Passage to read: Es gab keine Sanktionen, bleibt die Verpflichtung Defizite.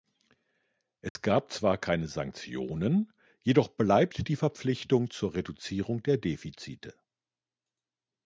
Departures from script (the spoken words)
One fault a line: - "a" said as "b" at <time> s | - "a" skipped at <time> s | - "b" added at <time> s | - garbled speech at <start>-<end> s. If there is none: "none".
- "zwar" added at 1.5 s
- "jedoch" added at 3.4 s
- "zur Reduzierung der" added at 5.1 s